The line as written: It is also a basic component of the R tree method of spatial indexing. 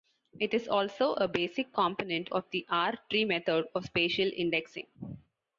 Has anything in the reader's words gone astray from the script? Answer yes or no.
no